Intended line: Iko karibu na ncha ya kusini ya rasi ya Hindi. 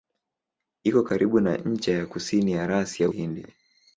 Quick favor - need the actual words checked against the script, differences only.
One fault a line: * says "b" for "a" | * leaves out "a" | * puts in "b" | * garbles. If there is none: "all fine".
all fine